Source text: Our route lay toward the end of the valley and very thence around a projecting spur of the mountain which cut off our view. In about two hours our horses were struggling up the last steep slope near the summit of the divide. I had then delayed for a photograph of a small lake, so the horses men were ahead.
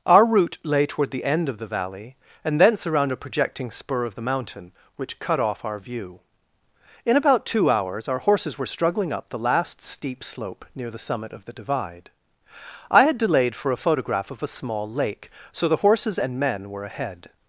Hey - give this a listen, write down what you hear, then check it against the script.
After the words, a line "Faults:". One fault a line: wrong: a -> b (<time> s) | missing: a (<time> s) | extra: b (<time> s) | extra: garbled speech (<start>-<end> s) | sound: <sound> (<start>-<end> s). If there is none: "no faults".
Our route lay toward the end of the valley and thence around a projecting spur of the mountain which cut off our view. In about two hours our horses were struggling up the last steep slope near the summit of the divide. I had delayed for a photograph of a small lake, so the horses and men were ahead.
Faults:
missing: very (2.6 s)
missing: then (13.2 s)
extra: and (16.2 s)